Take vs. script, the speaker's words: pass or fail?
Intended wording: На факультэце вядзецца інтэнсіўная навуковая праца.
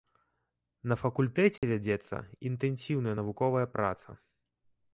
pass